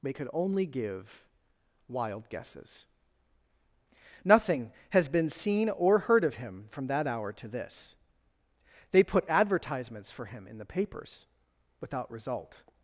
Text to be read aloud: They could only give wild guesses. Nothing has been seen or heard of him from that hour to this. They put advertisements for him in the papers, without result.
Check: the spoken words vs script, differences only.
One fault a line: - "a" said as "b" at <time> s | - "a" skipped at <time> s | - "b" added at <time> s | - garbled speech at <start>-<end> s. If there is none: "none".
none